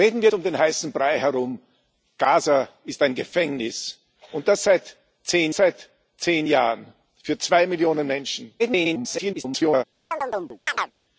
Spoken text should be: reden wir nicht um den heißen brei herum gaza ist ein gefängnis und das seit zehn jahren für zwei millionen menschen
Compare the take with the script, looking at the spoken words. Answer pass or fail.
fail